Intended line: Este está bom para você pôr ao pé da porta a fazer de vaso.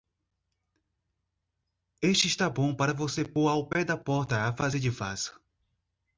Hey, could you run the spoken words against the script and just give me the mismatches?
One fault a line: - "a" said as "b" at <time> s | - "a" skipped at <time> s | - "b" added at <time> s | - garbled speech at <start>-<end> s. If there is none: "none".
none